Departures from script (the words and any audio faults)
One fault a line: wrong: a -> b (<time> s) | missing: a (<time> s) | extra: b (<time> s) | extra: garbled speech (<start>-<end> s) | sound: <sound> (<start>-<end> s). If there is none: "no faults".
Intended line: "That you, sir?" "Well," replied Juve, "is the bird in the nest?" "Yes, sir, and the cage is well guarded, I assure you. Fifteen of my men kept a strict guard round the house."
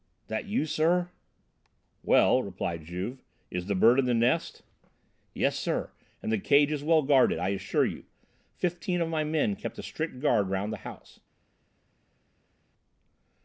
no faults